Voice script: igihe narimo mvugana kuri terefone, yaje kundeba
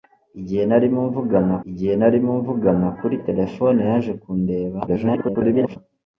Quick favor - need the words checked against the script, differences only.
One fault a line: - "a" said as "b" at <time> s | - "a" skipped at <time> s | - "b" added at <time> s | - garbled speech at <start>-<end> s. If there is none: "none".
- "igihe narimo mvugana" added at 1.7 s
- garbled speech at 4.9-5.8 s